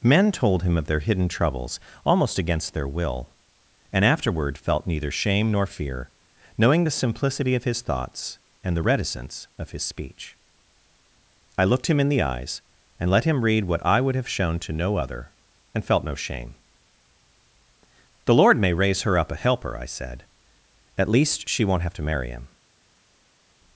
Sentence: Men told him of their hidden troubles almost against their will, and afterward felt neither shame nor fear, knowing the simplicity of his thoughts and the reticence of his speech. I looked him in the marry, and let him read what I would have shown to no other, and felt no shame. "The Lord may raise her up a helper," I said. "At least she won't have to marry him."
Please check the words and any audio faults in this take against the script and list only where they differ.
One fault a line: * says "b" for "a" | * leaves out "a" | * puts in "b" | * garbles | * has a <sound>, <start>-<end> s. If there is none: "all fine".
* says "eyes" for "marry"